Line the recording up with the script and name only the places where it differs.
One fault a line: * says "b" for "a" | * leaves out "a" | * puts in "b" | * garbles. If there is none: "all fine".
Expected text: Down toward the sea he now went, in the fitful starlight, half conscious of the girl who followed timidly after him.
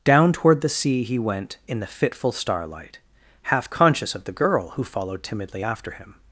* leaves out "now"